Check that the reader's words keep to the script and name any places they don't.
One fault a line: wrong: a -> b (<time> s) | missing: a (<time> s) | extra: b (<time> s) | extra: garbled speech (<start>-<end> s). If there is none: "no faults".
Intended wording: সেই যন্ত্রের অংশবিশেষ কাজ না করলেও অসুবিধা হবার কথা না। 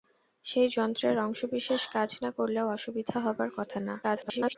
extra: garbled speech (4.0-4.6 s)